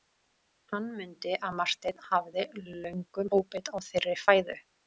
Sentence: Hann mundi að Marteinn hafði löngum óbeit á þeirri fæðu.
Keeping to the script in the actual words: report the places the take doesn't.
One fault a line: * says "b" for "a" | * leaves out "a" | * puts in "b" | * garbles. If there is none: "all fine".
all fine